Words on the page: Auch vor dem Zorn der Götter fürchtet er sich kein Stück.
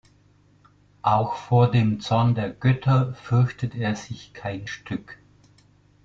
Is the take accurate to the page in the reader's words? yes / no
yes